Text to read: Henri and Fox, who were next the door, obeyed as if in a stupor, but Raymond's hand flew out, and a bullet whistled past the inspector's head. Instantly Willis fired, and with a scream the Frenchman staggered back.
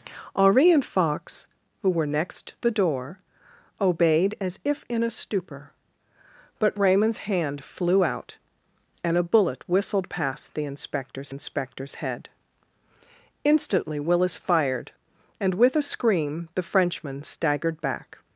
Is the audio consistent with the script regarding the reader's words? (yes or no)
no